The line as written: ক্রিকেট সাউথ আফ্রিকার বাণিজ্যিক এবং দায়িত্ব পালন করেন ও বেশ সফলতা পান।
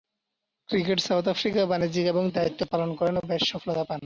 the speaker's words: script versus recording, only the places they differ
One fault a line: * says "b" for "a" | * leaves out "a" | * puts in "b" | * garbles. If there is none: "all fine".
all fine